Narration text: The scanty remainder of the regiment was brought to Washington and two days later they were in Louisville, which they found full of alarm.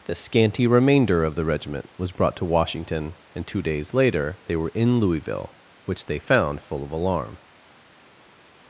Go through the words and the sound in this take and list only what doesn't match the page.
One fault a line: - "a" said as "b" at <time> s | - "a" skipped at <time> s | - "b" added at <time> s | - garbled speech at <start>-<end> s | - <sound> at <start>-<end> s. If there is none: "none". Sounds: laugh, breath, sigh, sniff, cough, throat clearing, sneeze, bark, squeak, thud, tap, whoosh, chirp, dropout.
none